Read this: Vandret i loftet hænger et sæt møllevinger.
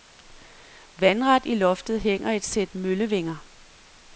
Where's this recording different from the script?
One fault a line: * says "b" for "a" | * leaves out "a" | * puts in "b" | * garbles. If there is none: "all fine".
all fine